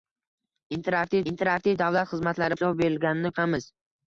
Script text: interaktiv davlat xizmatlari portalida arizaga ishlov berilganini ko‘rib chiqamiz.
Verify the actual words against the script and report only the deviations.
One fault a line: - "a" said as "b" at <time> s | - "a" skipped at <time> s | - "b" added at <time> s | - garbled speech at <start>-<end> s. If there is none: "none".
- "interaktiv" added at 1.3 s
- "portalida arizaga" skipped at 2.6 s
- "ko‘rib" skipped at 3.3 s